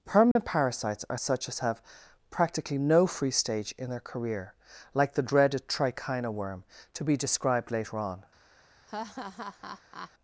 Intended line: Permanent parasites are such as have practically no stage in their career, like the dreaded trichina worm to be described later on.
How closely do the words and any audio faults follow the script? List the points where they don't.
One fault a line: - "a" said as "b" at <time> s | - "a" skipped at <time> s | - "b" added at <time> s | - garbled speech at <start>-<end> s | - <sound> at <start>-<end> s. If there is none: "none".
- dropout at 0.3-0.4 s
- "free" added at 3.0 s
- laugh at 8.9-10.1 s